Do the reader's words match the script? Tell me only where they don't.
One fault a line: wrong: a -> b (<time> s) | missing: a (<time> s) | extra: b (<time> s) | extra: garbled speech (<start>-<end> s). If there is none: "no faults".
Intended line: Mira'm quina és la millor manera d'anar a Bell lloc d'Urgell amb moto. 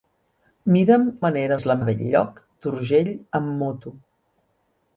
wrong: quina -> manera (1.2 s)
missing: millor manera d'anar (1.7 s)